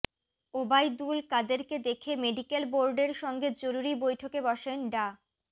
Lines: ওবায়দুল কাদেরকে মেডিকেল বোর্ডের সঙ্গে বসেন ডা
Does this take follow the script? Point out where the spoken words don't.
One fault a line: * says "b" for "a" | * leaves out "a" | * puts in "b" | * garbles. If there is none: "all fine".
* puts in "দেখে"
* puts in "জরুরি বৈঠকে"